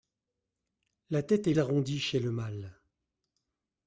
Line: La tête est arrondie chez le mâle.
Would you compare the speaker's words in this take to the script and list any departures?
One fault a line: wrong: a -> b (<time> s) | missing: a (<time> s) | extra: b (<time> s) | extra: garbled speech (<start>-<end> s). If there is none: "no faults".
no faults